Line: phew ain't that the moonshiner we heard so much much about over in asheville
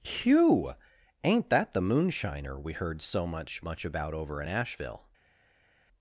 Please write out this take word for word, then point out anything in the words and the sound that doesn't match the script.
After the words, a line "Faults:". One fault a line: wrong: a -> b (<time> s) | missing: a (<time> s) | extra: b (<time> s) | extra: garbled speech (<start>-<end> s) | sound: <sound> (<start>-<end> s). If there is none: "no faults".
phew ain't that the moonshiner we heard so much much about over in asheville
Faults:
no faults